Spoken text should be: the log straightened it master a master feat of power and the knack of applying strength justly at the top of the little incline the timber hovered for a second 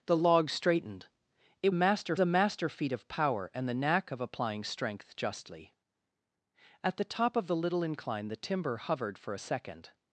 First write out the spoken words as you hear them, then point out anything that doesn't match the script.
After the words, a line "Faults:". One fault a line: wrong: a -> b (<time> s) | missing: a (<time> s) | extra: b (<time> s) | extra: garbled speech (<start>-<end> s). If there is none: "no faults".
the log straightened it master a master feat of power and the knack of applying strength justly at the top of the little incline the timber hovered for a second
Faults:
no faults